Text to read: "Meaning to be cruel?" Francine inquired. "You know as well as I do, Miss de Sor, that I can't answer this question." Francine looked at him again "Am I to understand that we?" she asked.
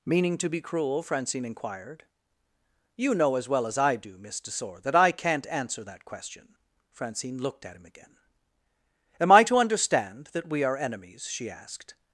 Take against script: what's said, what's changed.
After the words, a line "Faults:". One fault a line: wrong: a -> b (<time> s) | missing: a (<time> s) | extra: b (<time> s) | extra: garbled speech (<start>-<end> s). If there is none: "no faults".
"Meaning to be cruel?" Francine inquired. "You know as well as I do, Miss de Sor, that I can't answer that question." Francine looked at him again "Am I to understand that we are enemies?" she asked.
Faults:
wrong: this -> that (5.8 s)
extra: are enemies (10.6 s)